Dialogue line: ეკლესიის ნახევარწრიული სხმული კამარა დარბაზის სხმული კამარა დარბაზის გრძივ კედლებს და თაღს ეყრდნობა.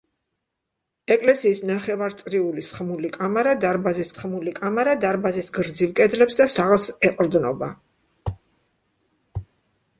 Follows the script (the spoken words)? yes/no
yes